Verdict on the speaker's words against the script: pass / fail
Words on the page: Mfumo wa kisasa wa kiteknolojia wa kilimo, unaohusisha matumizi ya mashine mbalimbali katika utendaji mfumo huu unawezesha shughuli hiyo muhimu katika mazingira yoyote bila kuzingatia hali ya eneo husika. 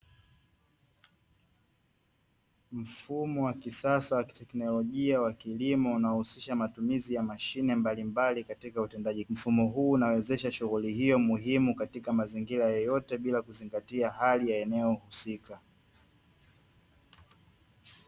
pass